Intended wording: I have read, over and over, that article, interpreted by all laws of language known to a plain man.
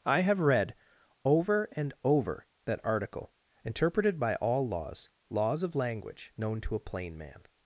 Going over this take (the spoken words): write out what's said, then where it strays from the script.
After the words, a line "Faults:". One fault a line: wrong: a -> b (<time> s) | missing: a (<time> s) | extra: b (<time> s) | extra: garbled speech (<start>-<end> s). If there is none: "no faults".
I have read, over and over, that article, interpreted by all laws laws of language known to a plain man.
Faults:
extra: laws (5.3 s)